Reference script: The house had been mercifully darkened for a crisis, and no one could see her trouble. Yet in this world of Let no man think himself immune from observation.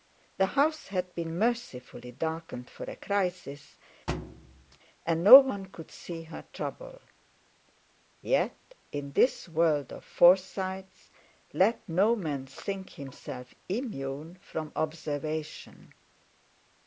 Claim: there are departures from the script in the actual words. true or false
true